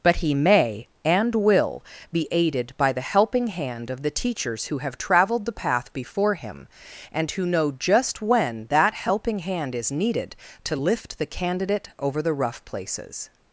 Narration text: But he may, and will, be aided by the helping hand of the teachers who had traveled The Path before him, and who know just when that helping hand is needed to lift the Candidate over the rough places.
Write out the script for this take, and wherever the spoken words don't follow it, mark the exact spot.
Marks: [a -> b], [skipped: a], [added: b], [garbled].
But he may, and will, be aided by the helping hand of the teachers who [had -> have] traveled The Path before him, and who know just when that helping hand is needed to lift the Candidate over the rough places.